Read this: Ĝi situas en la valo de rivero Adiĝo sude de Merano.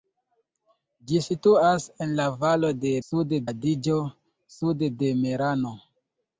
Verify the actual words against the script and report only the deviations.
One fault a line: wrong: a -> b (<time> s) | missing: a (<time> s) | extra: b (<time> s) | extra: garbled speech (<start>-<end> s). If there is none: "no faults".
wrong: rivero -> sude (3.1 s)